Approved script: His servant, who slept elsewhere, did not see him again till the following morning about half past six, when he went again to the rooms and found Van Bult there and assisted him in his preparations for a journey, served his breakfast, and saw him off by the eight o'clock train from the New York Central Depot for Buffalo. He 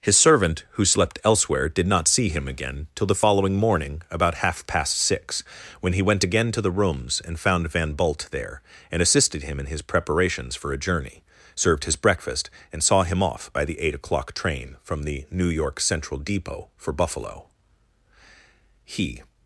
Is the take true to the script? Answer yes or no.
yes